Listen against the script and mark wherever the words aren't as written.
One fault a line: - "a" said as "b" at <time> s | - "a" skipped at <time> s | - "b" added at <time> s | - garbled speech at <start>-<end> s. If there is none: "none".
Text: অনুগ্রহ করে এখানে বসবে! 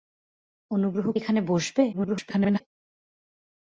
- "করে" skipped at 1.1 s
- garbled speech at 1.9-2.6 s